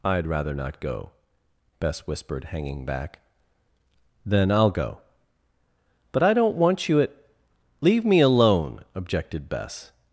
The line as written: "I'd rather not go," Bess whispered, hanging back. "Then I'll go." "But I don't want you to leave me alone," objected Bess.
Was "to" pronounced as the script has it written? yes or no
no